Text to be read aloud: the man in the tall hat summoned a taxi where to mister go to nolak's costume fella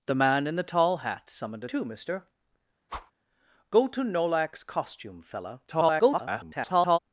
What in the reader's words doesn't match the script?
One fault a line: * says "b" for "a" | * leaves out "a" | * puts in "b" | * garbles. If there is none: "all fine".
* leaves out "taxi where"
* garbles